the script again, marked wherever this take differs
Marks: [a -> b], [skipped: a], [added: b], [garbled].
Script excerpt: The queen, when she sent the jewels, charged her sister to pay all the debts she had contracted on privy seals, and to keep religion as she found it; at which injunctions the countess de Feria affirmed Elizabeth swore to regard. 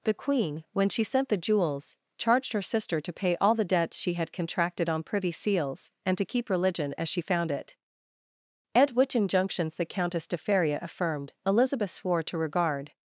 The queen, when she sent the jewels, charged her sister to pay all the debts she had contracted on privy seals, and to keep religion as she found it; at which injunctions the countess de Feria affirmed Elizabeth swore to regard.